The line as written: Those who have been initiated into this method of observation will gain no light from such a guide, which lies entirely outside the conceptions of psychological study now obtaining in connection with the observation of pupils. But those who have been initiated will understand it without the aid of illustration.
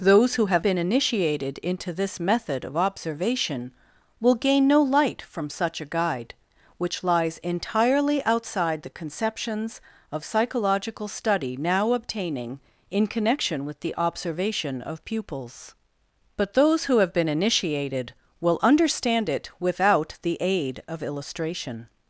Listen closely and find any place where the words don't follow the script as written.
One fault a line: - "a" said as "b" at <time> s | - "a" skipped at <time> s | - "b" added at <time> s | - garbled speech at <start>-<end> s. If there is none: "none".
none